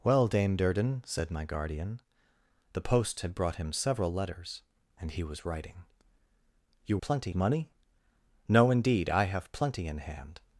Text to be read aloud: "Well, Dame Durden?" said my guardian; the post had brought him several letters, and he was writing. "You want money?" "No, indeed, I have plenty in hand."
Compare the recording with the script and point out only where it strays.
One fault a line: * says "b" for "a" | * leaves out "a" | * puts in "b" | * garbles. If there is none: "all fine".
* says "plenty" for "want"